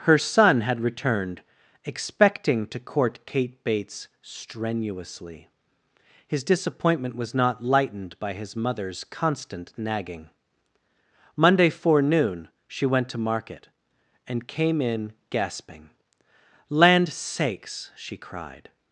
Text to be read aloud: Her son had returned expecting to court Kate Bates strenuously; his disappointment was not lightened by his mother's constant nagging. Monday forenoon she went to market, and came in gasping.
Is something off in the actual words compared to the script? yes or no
yes